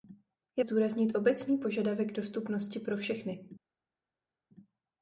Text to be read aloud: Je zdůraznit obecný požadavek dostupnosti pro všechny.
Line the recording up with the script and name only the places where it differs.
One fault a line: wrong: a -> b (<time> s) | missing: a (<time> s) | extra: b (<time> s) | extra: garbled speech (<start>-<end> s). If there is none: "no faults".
no faults